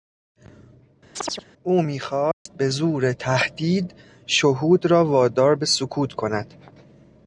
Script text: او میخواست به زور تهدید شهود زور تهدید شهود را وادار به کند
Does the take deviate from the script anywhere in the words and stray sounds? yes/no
yes